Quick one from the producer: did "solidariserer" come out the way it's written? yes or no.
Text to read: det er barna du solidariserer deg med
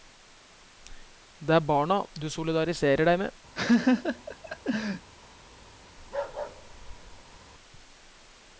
yes